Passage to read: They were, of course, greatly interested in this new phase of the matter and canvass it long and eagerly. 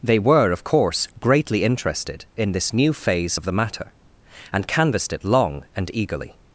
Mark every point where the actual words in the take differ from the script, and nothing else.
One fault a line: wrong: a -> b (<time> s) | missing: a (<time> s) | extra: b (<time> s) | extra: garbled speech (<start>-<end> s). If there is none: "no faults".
wrong: canvass -> canvassed (4.7 s)